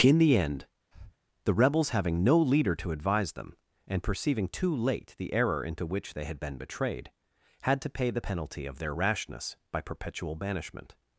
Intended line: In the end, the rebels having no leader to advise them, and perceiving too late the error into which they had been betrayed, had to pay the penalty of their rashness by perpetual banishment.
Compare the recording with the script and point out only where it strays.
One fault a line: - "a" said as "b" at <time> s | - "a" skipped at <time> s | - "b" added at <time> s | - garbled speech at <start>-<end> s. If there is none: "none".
none